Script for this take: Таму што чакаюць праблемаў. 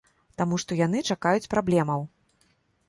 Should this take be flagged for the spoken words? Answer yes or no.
yes